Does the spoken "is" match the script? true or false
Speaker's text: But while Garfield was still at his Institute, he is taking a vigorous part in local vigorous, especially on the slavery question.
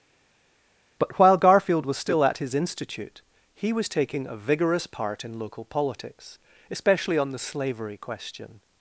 false